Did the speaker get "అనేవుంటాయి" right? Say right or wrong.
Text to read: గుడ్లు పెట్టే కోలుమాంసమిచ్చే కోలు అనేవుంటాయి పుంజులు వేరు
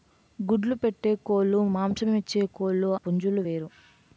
wrong